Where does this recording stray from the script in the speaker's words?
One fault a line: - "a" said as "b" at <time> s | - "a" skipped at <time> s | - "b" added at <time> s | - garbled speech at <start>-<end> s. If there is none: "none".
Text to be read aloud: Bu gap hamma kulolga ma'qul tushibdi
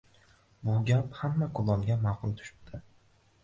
none